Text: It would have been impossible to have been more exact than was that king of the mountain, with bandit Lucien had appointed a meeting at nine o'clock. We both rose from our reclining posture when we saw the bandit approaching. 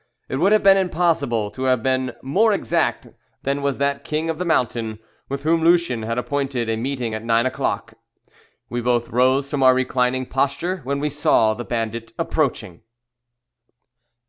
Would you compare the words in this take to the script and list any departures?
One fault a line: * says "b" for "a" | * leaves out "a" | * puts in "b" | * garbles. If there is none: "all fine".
* says "whom" for "bandit"